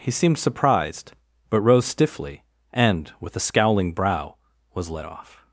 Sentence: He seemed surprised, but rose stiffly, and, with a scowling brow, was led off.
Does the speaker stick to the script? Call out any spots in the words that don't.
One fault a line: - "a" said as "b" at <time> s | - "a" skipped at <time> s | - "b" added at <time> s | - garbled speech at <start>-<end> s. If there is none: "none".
none